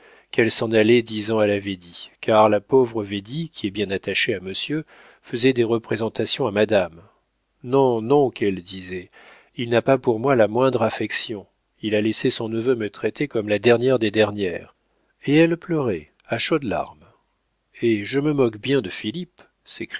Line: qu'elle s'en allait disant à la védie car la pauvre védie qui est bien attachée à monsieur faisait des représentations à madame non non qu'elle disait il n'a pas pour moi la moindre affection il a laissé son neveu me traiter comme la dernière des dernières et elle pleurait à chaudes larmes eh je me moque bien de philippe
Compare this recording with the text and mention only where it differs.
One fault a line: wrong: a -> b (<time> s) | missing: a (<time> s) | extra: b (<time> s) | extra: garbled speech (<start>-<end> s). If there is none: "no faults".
no faults